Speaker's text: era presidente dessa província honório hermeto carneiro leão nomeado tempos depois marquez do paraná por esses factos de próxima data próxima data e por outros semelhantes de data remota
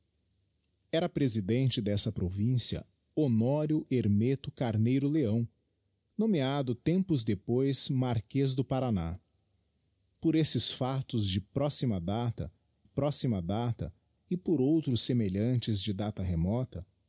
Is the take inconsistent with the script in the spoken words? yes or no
no